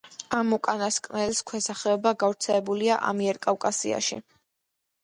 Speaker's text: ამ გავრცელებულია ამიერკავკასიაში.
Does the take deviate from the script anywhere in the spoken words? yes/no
yes